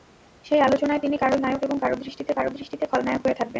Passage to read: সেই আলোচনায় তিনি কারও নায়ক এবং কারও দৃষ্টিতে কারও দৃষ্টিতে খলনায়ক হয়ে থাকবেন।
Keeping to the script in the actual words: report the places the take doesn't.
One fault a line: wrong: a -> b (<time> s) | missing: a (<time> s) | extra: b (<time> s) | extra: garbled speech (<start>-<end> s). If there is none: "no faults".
no faults